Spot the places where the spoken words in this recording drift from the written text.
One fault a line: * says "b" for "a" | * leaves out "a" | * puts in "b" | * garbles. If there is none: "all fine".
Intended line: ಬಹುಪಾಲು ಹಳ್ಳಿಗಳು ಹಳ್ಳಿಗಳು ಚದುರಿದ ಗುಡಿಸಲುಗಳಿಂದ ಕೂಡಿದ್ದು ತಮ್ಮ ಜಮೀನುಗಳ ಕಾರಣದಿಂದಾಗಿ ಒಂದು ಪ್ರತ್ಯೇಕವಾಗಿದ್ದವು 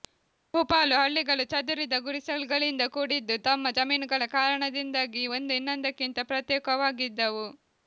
* leaves out "ಹಳ್ಳಿಗಳು"
* puts in "ಇನ್ನೊಂದಕ್ಕಿಂತ"